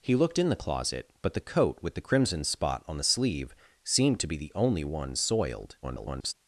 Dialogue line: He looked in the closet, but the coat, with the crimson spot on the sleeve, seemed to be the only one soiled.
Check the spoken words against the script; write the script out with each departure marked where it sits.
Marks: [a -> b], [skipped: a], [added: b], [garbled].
He looked in the closet, but the coat, with the crimson spot on the sleeve, seemed to be the only one soiled. [garbled]